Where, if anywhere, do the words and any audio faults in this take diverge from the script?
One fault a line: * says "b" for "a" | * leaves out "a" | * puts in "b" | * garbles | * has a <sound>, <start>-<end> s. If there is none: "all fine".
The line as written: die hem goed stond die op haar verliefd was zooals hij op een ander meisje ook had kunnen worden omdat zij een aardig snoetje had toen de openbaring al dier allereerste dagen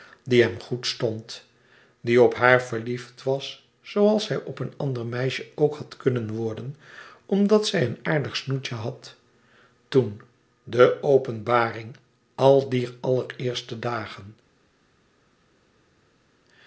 all fine